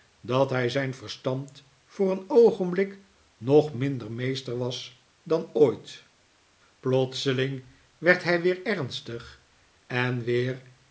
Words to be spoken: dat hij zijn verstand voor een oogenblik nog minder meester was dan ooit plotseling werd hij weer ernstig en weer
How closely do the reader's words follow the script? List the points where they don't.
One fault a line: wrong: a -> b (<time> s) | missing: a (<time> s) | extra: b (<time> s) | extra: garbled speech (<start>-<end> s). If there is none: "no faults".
no faults